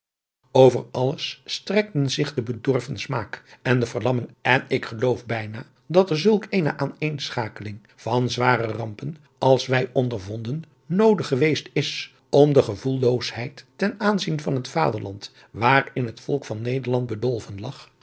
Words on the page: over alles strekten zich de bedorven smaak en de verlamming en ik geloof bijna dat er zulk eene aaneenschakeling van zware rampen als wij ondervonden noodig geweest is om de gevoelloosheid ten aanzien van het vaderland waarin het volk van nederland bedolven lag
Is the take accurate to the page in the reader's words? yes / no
yes